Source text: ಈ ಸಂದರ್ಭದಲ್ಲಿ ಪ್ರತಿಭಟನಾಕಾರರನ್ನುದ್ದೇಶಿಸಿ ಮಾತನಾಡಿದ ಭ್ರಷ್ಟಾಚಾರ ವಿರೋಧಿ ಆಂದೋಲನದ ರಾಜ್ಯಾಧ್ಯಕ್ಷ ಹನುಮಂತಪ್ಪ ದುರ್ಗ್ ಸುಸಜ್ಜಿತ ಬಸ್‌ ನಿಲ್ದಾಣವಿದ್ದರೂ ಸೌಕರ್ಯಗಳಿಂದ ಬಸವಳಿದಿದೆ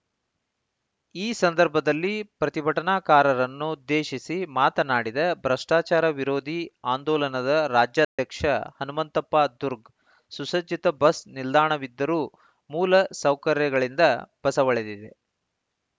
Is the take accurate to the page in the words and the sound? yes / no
no